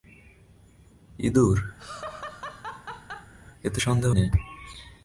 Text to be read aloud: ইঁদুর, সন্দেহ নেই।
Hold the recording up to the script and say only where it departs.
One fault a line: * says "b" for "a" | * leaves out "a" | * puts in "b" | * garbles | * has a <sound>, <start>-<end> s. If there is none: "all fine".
* has a laugh, 1.8-3.3 s
* puts in "এতে"